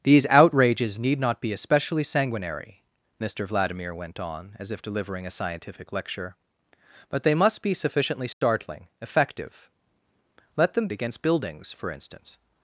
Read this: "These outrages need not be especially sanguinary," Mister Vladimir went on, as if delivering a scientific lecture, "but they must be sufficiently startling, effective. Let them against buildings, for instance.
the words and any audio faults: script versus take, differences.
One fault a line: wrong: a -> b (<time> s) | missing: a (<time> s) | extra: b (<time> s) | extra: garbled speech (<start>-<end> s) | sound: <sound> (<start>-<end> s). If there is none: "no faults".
sound: dropout (8.3-8.4 s)